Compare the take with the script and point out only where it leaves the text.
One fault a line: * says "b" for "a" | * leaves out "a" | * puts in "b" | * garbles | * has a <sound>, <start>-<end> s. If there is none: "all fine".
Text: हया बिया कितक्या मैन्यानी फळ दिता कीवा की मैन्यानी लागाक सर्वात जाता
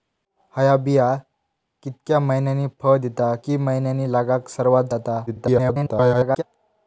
* leaves out "कीवा"
* garbles